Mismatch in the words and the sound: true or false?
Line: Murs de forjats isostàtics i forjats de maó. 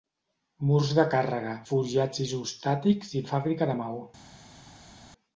true